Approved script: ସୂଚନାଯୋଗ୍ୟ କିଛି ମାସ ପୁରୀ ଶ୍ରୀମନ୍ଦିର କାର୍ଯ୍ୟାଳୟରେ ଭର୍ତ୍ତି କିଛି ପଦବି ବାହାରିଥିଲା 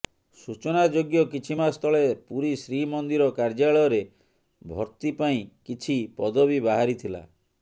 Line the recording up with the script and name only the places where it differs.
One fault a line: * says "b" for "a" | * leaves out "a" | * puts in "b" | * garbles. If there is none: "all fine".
* puts in "ତଳେ"
* puts in "ପାଇଁ"